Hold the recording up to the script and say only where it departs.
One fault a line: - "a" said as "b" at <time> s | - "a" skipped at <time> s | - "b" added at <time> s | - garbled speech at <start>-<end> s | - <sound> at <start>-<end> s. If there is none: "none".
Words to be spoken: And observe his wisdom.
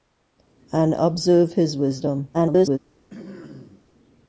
- garbled speech at 2.3-2.8 s
- throat clearing at 3.1-3.9 s